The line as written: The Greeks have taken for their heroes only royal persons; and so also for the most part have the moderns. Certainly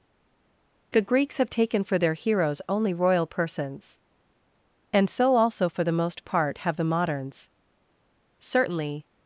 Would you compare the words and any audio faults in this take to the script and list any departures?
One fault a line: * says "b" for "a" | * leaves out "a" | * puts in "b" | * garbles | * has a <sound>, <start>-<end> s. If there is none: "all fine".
all fine